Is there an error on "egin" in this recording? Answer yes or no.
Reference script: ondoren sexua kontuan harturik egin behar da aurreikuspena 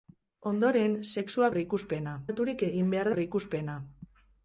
no